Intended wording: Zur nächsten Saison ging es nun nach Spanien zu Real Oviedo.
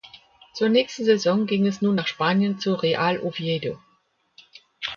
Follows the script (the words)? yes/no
yes